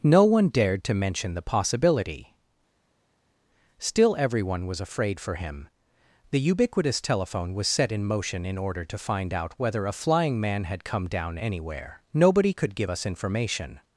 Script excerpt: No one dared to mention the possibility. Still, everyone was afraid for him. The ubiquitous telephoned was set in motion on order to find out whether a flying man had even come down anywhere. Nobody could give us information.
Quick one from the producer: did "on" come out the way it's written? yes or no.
no